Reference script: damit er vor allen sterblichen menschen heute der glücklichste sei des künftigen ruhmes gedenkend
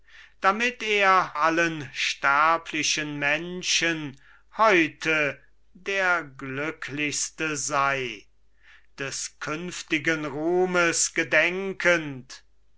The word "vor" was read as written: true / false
false